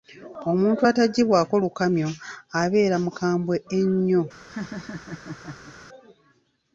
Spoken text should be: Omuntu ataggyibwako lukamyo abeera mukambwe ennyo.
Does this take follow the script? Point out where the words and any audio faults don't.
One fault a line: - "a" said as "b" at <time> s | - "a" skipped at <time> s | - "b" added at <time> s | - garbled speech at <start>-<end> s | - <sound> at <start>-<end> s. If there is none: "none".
- laugh at 4.5-5.8 s